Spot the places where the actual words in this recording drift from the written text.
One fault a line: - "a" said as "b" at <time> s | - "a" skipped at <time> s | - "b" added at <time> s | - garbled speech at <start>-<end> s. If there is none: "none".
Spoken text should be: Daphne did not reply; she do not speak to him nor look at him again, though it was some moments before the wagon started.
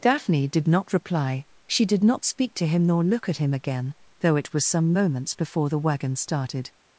- "do" said as "did" at 1.9 s